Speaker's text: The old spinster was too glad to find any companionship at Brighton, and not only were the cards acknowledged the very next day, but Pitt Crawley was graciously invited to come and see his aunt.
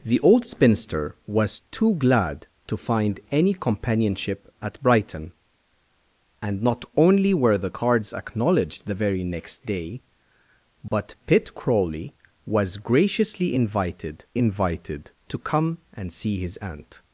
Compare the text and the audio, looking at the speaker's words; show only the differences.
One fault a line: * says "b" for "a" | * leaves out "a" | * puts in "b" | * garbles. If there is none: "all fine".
* puts in "invited"